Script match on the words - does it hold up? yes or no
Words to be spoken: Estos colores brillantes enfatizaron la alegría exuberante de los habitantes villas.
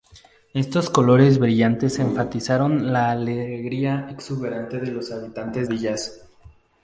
yes